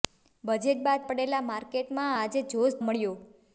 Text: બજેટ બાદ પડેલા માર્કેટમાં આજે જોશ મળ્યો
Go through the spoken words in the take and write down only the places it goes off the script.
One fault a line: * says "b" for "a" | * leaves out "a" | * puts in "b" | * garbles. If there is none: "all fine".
all fine